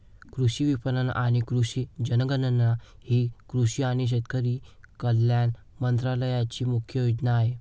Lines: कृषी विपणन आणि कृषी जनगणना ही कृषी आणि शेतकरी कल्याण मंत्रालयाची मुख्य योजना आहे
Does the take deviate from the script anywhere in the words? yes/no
no